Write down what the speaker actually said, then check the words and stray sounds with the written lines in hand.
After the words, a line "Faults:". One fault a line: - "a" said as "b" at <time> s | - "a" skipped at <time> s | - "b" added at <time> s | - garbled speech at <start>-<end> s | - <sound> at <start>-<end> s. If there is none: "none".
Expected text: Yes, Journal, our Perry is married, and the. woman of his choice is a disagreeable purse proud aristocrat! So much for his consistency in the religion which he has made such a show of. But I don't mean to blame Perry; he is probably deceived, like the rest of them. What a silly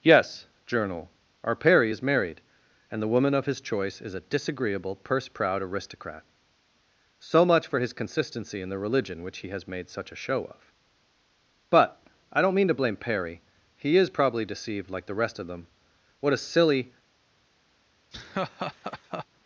Yes, Journal, our Perry is married, and the. woman of his choice is a disagreeable purse proud aristocrat! So much for his consistency in the religion which he has made such a show of. But I don't mean to blame Perry; he is probably deceived, like the rest of them. What a silly
Faults:
- laugh at 18.1-19.3 s